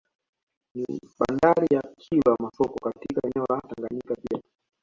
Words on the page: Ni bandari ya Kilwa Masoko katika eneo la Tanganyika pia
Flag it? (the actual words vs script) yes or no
no